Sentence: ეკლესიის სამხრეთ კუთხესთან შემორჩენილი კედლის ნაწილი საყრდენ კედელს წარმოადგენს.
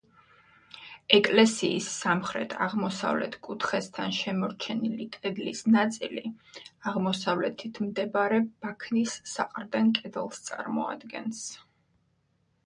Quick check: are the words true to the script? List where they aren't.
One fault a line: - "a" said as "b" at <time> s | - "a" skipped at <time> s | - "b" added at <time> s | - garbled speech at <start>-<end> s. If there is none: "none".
- "აღმოსავლეთ" added at 2.7 s
- "აღმოსავლეთით მდებარე ბაქნის" added at 6.9 s